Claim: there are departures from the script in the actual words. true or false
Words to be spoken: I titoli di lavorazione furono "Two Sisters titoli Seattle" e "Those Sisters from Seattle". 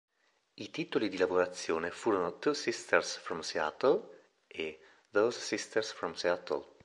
true